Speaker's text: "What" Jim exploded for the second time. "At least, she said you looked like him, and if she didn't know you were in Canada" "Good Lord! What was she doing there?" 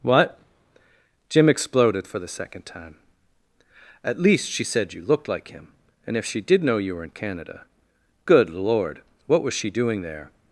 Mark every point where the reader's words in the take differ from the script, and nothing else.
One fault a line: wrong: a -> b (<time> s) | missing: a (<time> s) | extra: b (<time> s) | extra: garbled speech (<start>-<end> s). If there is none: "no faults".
wrong: didn't -> did (6.4 s)